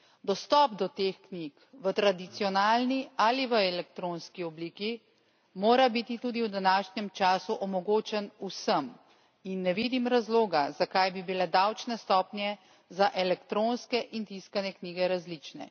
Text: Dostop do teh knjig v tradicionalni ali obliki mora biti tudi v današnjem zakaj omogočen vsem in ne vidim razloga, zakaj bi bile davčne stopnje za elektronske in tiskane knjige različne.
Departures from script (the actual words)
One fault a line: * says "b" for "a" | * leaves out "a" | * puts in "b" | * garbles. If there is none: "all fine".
* puts in "v elektronski"
* says "času" for "zakaj"